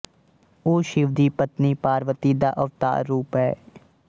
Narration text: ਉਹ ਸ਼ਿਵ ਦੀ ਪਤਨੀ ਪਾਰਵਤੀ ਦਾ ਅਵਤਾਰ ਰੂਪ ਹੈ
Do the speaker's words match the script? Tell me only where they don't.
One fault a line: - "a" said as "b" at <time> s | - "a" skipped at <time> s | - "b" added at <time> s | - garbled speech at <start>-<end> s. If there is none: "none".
none